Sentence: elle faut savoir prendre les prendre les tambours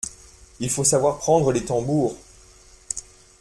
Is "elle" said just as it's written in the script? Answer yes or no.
no